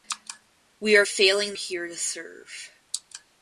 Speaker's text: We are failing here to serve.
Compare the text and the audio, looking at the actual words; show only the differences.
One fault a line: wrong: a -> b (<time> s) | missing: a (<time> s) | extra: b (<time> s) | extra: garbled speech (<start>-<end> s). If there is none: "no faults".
no faults